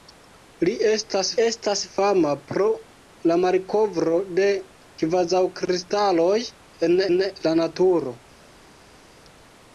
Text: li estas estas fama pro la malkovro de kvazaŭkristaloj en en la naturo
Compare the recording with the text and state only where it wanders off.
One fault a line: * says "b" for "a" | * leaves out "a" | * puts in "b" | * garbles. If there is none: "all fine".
all fine